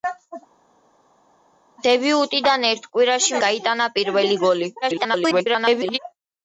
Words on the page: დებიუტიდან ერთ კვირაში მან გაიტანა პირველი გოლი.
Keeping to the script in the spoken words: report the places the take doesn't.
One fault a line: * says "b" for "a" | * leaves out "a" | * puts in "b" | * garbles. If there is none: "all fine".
* leaves out "მან"
* garbles